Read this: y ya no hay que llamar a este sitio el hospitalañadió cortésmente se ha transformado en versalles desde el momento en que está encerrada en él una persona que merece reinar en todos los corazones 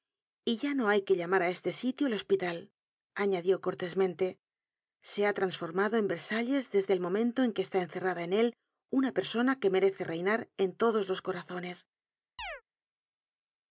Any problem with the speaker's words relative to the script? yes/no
no